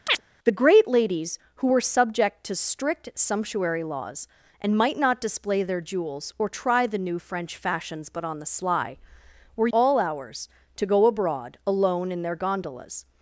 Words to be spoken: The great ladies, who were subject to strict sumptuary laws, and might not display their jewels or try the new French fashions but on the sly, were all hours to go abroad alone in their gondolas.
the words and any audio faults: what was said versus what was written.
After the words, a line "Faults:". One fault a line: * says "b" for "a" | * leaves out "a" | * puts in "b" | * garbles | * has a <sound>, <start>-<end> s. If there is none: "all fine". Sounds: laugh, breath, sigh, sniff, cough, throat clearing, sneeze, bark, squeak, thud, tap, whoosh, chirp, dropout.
The great ladies, who were subject to strict sumptuary laws, and might not display their jewels or try the new French fashions but on the sly, were all hours to go abroad alone in their gondolas.
Faults:
* has a chirp, 0.1-0.2 s